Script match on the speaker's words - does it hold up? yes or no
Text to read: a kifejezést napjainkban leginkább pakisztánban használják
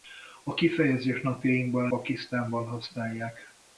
no